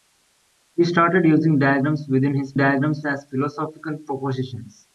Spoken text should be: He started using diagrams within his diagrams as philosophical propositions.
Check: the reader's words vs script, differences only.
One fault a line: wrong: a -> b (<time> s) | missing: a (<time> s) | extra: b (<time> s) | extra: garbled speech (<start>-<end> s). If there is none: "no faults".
no faults